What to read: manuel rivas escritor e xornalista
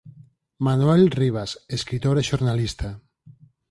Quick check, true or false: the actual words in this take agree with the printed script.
true